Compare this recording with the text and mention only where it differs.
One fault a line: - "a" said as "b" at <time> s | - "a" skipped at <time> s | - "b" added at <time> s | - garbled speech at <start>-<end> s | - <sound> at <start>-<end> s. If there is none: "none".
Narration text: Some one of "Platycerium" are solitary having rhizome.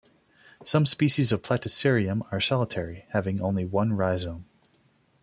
- "one" said as "species" at 0.9 s
- "only one" added at 3.4 s